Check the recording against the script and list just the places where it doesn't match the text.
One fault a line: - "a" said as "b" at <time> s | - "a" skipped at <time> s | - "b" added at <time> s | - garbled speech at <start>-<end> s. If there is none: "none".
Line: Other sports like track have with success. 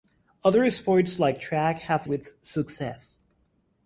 none